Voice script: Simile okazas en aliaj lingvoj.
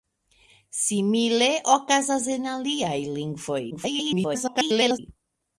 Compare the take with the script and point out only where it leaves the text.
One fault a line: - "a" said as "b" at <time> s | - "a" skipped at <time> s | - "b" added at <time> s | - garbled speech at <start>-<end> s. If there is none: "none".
- garbled speech at 3.7-5.0 s